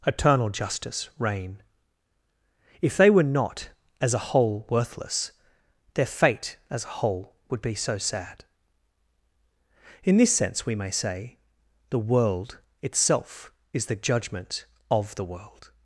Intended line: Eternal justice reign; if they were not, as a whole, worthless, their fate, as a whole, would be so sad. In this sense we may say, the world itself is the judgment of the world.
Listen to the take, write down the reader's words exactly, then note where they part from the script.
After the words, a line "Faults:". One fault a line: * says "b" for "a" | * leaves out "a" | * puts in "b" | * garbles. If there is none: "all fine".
Eternal justice reign; if they were not, as a whole, worthless, their fate, as a whole, would be so sad. In this sense we may say, the world itself is the judgment of the world.
Faults:
all fine